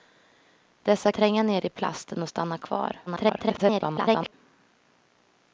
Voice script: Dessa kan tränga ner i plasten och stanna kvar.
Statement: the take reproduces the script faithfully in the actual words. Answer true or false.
false